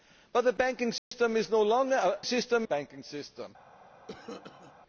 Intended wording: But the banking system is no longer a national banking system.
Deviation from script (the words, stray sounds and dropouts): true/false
true